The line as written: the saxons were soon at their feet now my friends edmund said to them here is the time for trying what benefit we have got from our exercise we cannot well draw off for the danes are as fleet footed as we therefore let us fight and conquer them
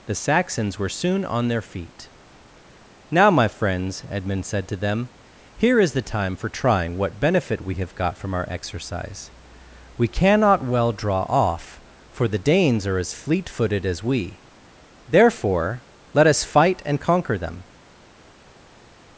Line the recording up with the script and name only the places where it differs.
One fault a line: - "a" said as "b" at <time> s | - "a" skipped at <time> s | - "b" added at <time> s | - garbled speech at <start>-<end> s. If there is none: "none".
- "at" said as "on" at 1.2 s